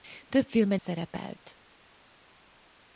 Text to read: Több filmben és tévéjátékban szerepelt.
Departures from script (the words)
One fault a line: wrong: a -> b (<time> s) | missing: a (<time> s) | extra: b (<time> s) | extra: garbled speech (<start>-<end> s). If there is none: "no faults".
missing: és tévéjátékban (0.8 s)